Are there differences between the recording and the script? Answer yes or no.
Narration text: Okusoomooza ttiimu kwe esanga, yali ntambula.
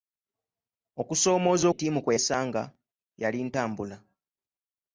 no